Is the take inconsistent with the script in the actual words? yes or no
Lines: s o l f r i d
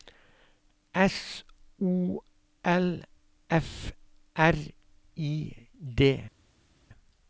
no